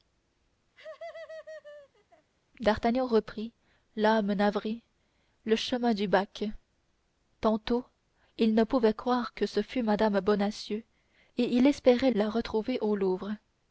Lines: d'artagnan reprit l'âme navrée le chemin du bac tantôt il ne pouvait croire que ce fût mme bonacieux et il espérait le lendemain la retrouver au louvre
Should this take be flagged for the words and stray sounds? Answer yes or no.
yes